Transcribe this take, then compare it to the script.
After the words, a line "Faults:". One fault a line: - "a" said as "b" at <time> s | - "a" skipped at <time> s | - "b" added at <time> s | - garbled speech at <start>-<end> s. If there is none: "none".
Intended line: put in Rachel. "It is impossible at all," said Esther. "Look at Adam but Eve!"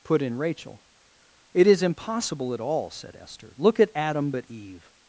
put in Rachel. "It is impossible at all," said Esther. "Look at Adam but Eve!"
Faults:
none